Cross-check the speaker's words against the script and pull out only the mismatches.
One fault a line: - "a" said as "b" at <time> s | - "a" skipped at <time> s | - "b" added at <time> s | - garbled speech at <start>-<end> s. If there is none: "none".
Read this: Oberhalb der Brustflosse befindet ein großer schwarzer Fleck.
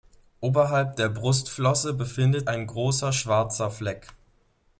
none